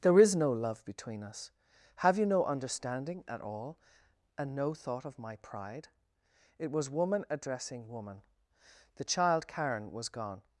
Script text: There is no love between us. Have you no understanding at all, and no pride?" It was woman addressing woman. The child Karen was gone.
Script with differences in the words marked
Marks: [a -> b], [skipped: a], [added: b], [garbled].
There is no love between us. Have you no understanding at all, and no [added: thought of my] pride?" It was woman addressing woman. The child Karen was gone.